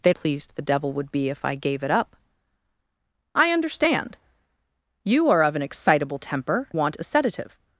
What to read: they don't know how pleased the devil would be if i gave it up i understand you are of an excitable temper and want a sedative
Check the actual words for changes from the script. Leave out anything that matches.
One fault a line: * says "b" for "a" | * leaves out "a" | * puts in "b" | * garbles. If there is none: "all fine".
* leaves out "don't know how"
* leaves out "and"